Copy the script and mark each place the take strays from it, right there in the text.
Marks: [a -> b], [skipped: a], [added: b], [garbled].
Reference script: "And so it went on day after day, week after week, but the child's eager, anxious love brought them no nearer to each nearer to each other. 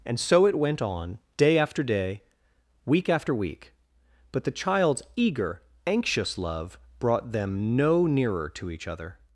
"And so it went on day after day, week after week, but the child's eager, anxious love brought them no nearer to each [skipped: nearer to each] other.